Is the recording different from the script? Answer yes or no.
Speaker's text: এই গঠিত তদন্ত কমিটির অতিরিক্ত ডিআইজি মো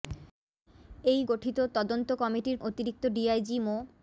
no